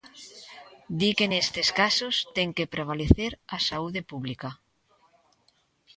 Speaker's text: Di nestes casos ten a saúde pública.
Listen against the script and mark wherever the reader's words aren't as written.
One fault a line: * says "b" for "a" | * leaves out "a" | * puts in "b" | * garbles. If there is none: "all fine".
* puts in "que"
* puts in "que prevalecer"